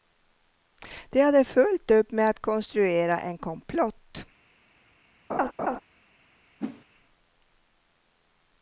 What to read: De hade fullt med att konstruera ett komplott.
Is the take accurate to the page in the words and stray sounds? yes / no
no